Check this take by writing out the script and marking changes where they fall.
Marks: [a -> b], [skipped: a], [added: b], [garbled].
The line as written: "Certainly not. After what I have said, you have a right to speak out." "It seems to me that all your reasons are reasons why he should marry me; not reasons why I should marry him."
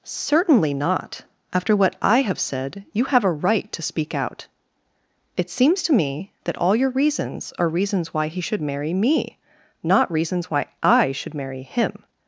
"Certainly not. After what I have said, you have a right to speak out." "It seems to me that all your reasons are reasons why he should marry me; not reasons why I should marry him."